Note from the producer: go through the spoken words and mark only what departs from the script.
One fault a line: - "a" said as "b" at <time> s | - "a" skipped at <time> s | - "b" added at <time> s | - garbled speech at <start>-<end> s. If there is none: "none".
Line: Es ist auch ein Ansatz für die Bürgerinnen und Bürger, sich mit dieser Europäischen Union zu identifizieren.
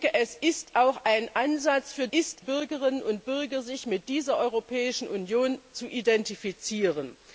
- "die" said as "ist" at 2.1 s